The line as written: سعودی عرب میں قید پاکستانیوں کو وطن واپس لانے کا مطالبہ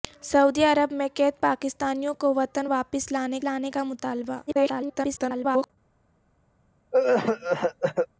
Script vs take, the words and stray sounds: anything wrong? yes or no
yes